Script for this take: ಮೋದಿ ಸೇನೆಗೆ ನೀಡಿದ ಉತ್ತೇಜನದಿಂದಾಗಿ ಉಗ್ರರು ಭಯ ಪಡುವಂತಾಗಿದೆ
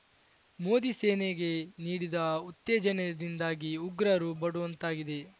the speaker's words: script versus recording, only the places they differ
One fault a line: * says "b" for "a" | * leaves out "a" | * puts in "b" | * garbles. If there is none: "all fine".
* leaves out "ಭಯ"